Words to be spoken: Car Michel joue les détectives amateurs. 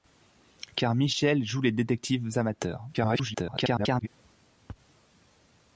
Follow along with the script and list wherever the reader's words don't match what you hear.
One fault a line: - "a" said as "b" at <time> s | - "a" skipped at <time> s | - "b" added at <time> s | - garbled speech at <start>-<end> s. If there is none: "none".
- garbled speech at 2.9-4.1 s